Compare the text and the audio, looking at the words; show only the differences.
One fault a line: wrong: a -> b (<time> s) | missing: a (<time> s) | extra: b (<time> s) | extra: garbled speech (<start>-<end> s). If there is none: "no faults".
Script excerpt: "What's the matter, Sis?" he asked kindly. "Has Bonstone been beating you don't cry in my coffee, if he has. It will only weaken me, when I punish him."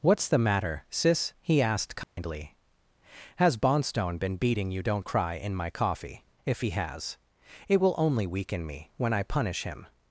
no faults